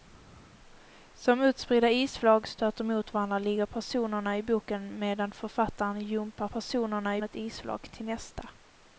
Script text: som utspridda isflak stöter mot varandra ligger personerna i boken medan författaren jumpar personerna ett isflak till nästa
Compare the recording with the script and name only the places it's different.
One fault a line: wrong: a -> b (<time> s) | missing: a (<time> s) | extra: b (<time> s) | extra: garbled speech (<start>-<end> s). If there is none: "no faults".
no faults